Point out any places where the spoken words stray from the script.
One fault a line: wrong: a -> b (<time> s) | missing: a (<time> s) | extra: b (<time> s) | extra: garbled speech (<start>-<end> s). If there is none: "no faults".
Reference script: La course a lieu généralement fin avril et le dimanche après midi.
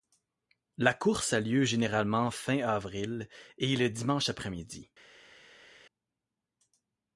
no faults